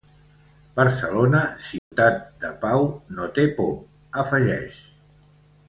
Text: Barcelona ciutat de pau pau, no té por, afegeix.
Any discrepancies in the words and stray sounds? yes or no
yes